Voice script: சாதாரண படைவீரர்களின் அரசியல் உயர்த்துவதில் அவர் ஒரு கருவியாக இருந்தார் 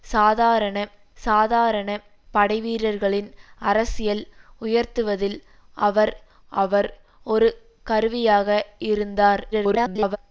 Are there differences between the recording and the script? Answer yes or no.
yes